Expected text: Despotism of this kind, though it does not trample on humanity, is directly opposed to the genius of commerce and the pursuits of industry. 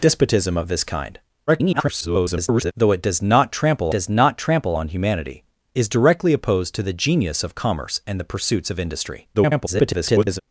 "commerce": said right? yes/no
yes